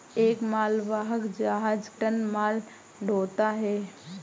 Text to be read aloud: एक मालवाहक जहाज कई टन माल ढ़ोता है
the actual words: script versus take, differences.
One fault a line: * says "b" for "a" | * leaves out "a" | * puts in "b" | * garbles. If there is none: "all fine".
* leaves out "कई"